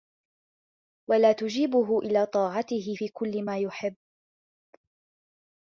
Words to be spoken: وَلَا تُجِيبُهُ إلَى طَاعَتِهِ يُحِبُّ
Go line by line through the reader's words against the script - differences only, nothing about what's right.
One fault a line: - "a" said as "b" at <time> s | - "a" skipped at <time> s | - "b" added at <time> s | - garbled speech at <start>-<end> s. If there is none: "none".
- "فِي كُلِّ مَا" added at 2.9 s